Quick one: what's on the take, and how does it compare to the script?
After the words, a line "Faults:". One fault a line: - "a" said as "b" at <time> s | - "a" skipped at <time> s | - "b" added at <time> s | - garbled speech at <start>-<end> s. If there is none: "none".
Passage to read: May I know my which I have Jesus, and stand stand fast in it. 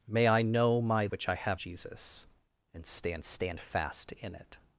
May I know my which I have Jesus, and stand stand fast in it.
Faults:
none